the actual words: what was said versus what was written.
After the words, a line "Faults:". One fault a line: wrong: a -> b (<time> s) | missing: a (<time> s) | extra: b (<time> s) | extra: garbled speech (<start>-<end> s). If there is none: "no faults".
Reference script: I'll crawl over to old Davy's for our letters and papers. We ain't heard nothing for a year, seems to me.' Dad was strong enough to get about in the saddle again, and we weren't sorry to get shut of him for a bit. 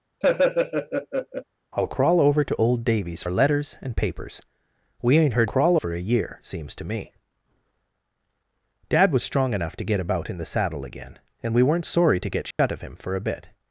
I'll crawl over to old Davy's our letters and papers. We ain't heard crawl for a year, seems to me.' Dad was strong enough to get about in the saddle again, and we weren't sorry to get shut of him for a bit.
Faults:
missing: for (3.2 s)
wrong: nothing -> crawl (5.4 s)